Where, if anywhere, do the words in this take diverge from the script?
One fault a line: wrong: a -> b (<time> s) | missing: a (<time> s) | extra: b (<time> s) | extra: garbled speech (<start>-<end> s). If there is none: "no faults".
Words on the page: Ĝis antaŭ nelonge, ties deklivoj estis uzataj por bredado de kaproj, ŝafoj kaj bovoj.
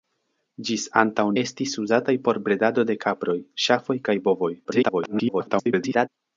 missing: nelonge ties deklivoj (1.2 s)
extra: garbled speech (4.6-6.1 s)